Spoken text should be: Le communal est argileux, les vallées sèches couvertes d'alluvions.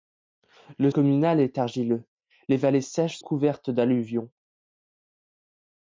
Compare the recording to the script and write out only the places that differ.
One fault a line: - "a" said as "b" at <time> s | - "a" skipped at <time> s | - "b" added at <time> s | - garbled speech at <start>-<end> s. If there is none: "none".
none